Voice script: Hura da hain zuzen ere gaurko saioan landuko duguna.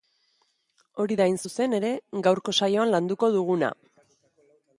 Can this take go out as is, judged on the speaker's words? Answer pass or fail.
fail